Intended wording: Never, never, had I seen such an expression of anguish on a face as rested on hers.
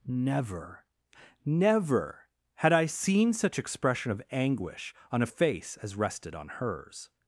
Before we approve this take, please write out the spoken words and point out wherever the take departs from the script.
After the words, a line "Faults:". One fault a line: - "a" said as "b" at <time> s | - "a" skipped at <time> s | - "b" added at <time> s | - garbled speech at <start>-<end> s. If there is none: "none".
Never, never, had I seen such expression of anguish on a face as rested on hers.
Faults:
- "an" skipped at 3.6 s